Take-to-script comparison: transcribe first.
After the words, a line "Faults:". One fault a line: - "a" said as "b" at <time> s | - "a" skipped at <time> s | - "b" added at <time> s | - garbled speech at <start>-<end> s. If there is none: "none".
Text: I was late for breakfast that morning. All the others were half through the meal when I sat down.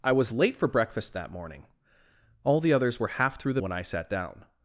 I was late for breakfast that morning. All the others were half through the when I sat down.
Faults:
- "meal" skipped at 3.6 s